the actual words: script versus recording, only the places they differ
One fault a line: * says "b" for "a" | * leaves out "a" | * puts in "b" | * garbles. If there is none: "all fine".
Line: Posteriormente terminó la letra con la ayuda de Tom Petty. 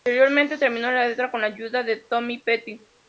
all fine